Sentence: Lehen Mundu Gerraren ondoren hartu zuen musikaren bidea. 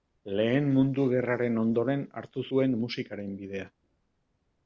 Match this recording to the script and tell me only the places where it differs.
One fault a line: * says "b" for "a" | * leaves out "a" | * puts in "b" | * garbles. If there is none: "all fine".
all fine